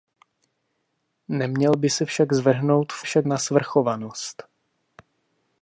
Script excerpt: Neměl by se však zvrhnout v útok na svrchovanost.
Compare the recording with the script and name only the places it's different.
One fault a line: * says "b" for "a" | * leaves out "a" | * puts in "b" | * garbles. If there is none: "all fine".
* says "však" for "útok"